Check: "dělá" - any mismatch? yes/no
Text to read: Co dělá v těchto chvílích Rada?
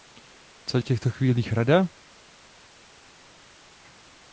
yes